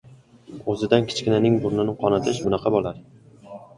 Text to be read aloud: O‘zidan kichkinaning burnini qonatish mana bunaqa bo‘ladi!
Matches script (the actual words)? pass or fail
fail